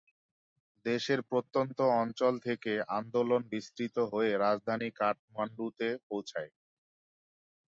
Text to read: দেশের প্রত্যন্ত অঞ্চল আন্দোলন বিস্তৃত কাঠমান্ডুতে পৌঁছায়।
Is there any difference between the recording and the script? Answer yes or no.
yes